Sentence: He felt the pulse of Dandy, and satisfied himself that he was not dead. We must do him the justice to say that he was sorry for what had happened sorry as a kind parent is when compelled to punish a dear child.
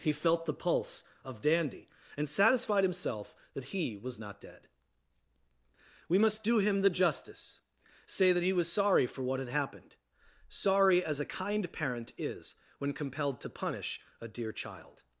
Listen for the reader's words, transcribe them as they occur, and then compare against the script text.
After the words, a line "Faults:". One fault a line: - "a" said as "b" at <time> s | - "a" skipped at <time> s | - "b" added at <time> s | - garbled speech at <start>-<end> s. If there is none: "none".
He felt the pulse of Dandy, and satisfied himself that he was not dead. We must do him the justice say that he was sorry for what had happened sorry as a kind parent is when compelled to punish a dear child.
Faults:
- "to" skipped at 7.6 s